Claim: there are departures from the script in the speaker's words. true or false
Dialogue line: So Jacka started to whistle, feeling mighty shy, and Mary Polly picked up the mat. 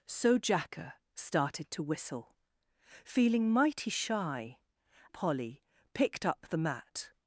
true